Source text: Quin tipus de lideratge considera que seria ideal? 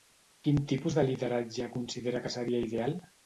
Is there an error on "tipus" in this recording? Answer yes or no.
no